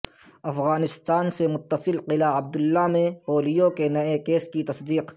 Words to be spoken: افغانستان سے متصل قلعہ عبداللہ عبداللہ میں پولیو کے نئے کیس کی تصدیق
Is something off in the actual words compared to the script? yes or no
yes